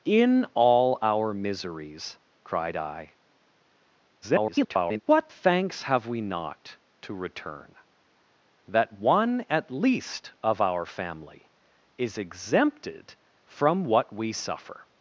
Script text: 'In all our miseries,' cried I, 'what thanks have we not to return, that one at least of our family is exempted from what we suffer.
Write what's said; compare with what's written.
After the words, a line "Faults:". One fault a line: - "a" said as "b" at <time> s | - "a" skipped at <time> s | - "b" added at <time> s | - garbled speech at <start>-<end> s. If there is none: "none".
'In all our miseries,' cried I, [garbled] 'what thanks have we not to return, that one at least of our family is exempted from what we suffer.
Faults:
- garbled speech at 4.2-5.0 s